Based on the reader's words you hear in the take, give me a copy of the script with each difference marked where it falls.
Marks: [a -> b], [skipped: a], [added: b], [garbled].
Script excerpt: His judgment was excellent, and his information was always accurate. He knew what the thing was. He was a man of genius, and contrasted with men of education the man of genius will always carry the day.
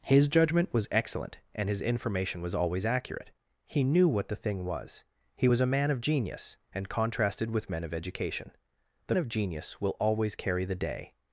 His judgment was excellent, and his information was always accurate. He knew what the thing was. He was a man of genius, and contrasted with men of education the [skipped: man] of genius will always carry the day.